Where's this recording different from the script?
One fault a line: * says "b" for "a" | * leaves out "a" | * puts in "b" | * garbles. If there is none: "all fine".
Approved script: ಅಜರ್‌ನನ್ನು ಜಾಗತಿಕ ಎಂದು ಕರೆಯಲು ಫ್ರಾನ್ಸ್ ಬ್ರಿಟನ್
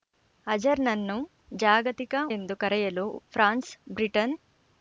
all fine